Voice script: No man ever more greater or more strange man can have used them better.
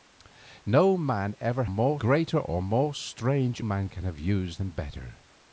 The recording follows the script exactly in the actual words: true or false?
true